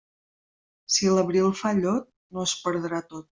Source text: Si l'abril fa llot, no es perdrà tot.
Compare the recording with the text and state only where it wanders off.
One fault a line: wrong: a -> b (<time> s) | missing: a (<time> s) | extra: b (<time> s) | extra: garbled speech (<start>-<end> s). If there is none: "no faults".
no faults